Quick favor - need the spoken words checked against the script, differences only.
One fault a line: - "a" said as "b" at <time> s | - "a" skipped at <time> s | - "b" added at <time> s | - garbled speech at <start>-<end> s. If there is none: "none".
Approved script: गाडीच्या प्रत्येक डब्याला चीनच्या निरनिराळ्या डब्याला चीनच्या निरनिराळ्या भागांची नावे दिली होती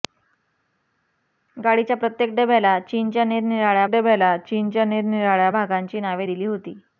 none